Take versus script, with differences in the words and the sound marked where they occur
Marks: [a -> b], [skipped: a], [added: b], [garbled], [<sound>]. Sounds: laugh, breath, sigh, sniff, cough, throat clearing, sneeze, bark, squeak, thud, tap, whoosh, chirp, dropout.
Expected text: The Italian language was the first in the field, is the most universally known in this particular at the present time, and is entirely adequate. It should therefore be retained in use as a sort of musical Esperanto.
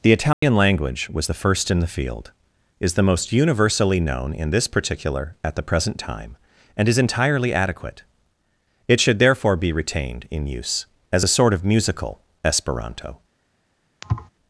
The Italian [dropout] language was the first in the field, is the most universally known in this particular at the present time, and is entirely adequate. It should therefore be retained in use as a sort of musical Esperanto. [thud]